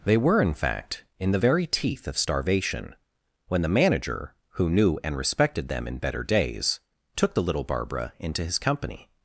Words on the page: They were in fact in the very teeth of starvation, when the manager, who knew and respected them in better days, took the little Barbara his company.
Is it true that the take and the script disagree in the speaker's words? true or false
true